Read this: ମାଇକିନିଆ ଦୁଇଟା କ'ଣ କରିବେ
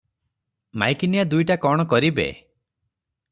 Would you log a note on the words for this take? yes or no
no